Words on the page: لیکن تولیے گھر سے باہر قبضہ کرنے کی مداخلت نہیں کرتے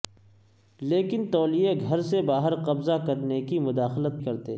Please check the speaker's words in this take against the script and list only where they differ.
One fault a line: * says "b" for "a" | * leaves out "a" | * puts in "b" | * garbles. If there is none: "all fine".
* leaves out "نہیں"